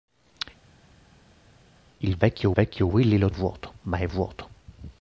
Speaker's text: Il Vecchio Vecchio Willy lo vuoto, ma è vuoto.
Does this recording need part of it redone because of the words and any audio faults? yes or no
no